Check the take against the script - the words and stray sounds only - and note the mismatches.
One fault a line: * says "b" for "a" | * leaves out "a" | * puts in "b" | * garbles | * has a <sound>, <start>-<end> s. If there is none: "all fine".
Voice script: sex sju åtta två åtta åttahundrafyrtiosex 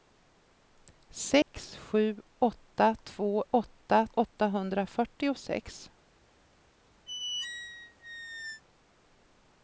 * has a dropout, 1.4-1.5 s
* has a squeak, 7.1-8.6 s